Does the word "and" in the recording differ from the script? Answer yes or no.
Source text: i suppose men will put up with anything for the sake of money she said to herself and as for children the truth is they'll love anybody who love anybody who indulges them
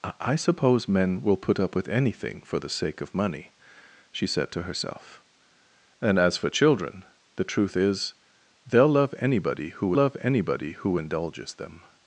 no